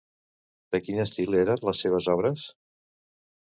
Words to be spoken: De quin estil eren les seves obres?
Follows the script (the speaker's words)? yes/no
yes